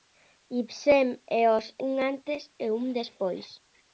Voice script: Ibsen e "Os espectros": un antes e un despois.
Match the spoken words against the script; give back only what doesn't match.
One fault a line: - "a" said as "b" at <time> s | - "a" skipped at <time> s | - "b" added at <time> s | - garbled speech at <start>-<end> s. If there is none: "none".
- "espectros" skipped at 1.6 s